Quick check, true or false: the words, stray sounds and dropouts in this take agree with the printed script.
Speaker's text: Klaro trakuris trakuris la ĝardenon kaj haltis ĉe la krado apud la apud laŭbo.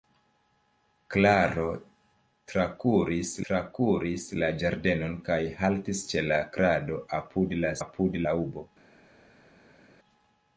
true